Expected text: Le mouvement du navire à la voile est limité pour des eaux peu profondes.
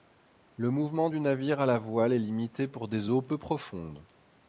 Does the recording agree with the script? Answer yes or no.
yes